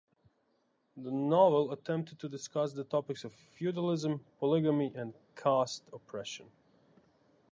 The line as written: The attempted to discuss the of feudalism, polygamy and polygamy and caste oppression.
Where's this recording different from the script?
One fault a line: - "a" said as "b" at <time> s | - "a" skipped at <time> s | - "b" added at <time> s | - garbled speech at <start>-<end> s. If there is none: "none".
- "novel" added at 1.1 s
- "topics" added at 2.8 s
- "polygamy and" skipped at 5.1 s